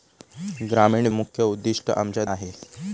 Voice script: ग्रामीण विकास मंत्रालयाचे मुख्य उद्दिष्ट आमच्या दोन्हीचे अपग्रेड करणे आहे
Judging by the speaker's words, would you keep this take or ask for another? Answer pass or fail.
fail